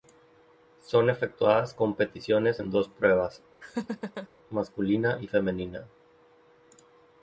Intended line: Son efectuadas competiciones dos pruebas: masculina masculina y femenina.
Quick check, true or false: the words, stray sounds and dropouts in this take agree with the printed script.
false